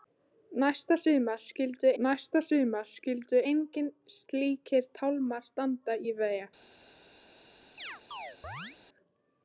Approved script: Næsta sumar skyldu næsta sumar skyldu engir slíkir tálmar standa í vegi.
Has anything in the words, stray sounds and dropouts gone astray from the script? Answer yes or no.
yes